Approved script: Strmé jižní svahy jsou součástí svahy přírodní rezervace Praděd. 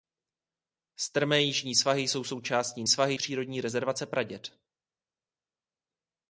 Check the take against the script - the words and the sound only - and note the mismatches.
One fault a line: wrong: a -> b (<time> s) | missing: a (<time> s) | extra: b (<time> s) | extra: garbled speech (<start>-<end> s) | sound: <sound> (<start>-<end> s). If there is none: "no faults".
no faults